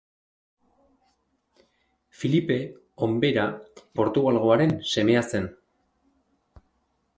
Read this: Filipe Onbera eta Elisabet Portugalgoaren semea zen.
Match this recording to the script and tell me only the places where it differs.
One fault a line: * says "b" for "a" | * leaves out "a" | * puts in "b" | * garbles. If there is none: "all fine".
* leaves out "eta Elisabet"